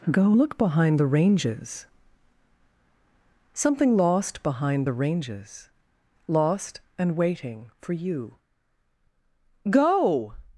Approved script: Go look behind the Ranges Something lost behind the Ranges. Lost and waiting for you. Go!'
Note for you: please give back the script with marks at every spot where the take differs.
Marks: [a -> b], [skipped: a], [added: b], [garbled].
Go look behind the Ranges Something lost behind the Ranges. Lost and waiting for you. Go!'